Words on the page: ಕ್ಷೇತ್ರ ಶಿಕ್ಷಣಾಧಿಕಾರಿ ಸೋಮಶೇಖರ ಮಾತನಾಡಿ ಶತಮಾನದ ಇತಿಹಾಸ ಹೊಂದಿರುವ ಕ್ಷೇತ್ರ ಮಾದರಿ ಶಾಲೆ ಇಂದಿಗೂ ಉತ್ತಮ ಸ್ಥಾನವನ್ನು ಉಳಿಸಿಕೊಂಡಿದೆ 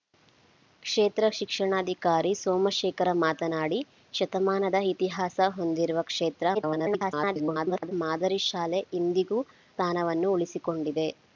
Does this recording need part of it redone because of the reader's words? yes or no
yes